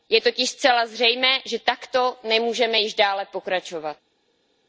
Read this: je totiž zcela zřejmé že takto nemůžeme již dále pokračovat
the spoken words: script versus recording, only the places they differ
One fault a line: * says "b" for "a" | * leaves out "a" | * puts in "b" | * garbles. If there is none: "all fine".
all fine